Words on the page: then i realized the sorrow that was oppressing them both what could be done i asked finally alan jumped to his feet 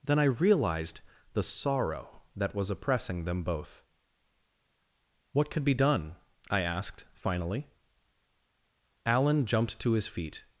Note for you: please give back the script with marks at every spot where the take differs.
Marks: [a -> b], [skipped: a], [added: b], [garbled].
then i realized the sorrow that was oppressing them both what could be done i asked finally alan jumped to his feet